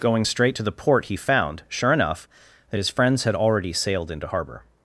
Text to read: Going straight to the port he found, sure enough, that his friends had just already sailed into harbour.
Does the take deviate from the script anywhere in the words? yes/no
yes